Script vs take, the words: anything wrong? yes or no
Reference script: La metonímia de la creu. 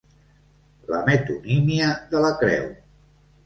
no